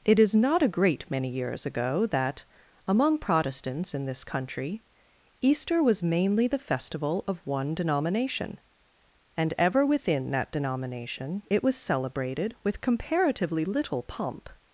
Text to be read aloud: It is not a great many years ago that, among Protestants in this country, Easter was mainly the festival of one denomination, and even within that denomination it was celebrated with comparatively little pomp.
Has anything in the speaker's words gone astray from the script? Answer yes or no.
yes